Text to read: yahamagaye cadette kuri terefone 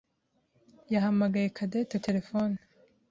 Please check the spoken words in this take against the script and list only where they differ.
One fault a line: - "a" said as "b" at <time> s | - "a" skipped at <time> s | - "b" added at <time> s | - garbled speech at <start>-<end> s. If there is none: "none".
- "kuri" skipped at 1.9 s